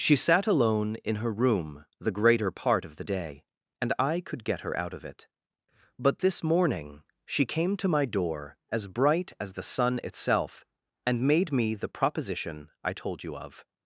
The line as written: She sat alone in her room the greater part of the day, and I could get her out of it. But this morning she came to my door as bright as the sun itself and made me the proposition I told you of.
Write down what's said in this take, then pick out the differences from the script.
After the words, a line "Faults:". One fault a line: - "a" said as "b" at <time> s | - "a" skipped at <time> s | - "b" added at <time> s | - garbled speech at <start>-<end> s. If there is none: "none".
She sat alone in her room the greater part of the day, and I could get her out of it. But this morning she came to my door as bright as the sun itself and made me the proposition I told you of.
Faults:
none